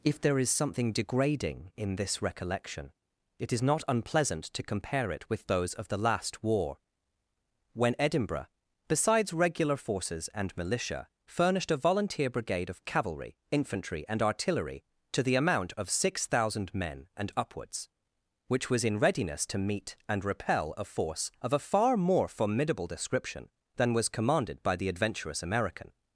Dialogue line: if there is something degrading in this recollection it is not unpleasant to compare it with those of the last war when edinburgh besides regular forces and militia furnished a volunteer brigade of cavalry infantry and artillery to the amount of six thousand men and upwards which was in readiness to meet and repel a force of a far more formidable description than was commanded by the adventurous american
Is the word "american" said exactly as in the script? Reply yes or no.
yes